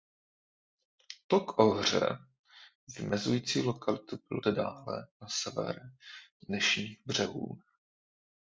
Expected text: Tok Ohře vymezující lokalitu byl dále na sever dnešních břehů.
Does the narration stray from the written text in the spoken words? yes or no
no